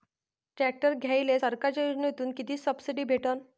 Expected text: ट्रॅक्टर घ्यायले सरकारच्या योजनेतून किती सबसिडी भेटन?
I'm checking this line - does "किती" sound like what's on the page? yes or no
yes